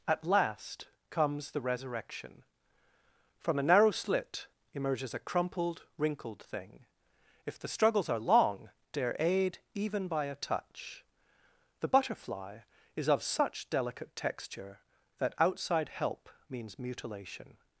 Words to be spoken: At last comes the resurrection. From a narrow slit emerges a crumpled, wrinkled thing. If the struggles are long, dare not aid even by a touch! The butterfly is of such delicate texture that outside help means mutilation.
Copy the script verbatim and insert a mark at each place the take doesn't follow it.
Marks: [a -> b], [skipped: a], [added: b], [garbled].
At last comes the resurrection. From a narrow slit emerges a crumpled, wrinkled thing. If the struggles are long, dare [skipped: not] aid even by a touch! The butterfly is of such delicate texture that outside help means mutilation.